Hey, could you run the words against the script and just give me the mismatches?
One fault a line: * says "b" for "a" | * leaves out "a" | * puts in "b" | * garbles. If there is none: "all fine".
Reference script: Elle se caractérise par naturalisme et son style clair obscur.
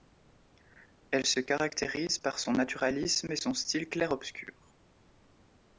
* puts in "son"